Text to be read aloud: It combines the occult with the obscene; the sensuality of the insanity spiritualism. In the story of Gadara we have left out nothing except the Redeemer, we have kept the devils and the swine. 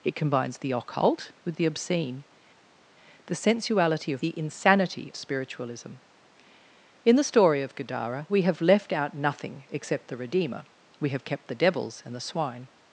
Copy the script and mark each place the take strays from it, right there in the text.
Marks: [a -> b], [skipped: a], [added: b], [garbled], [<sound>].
It combines the occult with the obscene; the sensuality of the insanity spiritualism. In the story of Gadara we have left out nothing except the Redeemer, we have kept the devils and the swine.